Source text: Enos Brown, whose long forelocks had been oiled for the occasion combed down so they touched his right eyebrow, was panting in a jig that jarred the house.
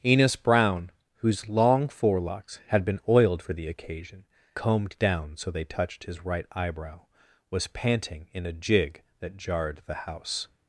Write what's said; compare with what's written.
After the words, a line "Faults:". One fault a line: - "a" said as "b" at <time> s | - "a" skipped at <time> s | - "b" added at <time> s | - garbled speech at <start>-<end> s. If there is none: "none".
Enos Brown, whose long forelocks had been oiled for the occasion combed down so they touched his right eyebrow, was panting in a jig that jarred the house.
Faults:
none